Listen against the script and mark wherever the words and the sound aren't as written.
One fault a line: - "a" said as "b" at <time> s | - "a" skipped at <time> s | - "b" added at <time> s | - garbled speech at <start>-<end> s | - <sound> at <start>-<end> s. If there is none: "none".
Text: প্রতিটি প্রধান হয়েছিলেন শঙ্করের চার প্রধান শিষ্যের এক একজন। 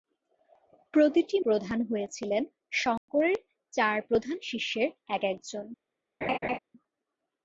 - dropout at 3.0-3.1 s
- laugh at 6.2-6.6 s